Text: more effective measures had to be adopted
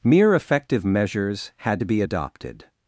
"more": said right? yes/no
no